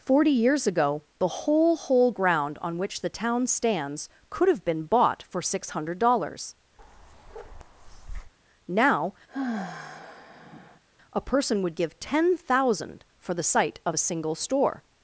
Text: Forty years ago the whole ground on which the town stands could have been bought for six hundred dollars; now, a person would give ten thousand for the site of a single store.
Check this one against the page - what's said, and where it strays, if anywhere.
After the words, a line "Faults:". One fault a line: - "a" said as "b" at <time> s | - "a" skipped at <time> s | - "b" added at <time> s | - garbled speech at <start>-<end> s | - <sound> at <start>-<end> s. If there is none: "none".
Forty years ago the whole whole ground on which the town stands could have been bought for six hundred dollars; now, a person would give ten thousand for the site of a single store.
Faults:
- "whole" added at 1.8 s
- bark at 6.8-8.3 s
- sigh at 9.3-10.8 s